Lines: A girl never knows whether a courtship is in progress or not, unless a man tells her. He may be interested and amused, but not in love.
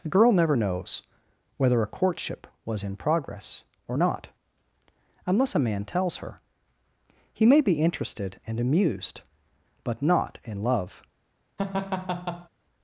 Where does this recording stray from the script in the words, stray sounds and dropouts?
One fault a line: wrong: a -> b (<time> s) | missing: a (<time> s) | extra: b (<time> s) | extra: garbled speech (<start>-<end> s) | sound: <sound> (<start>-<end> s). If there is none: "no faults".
wrong: is -> was (2.6 s)
sound: laugh (11.6-12.5 s)